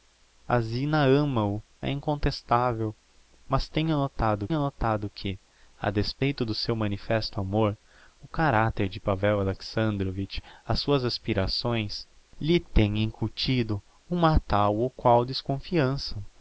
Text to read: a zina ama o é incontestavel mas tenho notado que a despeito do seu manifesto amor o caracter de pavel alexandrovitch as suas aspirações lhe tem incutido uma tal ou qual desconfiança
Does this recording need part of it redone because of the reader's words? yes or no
yes